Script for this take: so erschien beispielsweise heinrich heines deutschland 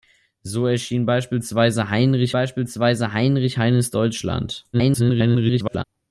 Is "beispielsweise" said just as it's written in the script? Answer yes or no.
yes